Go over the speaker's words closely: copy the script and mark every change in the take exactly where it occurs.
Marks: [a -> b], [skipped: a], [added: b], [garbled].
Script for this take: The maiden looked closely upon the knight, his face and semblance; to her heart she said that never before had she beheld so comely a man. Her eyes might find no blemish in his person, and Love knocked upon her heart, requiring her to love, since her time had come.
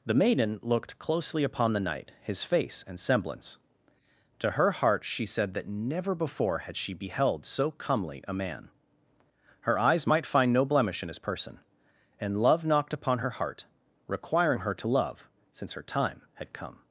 The maiden looked closely upon the knight, his face and semblance; to her heart she said that never before had she beheld so comely a man. Her eyes might find no blemish in his person, and Love knocked upon her heart, requiring her to love, since her time had come.